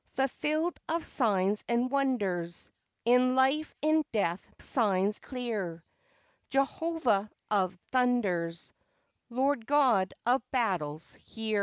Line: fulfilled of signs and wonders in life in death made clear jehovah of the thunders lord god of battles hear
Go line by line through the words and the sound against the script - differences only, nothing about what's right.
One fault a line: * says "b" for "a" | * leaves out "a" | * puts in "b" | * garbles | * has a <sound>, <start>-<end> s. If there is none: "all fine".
* says "signs" for "made"
* leaves out "the"